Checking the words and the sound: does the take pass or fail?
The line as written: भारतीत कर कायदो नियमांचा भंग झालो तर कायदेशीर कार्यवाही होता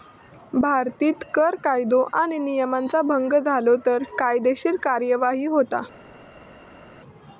fail